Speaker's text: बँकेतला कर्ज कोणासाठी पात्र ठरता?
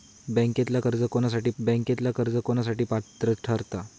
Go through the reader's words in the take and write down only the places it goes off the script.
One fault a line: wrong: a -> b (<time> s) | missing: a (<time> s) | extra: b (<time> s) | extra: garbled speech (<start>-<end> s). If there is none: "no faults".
extra: बँकेतला कर्ज कोणासाठी (1.6 s)